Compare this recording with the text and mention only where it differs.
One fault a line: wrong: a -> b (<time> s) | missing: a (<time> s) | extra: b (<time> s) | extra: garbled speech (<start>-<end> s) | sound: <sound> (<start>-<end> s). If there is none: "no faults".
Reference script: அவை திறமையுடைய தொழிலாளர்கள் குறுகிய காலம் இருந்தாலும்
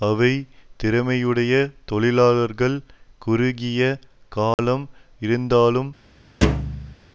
sound: dropout (4.5-4.6 s)
sound: thud (6.4-7.0 s)